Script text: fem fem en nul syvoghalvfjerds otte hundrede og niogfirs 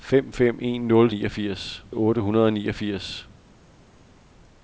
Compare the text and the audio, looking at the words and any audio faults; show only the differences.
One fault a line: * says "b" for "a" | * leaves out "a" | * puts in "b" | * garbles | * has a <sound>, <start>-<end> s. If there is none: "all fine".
* says "niogfirs" for "syvoghalvfjerds"